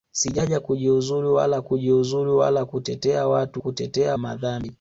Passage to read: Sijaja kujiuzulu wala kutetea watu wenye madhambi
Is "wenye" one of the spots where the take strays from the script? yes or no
yes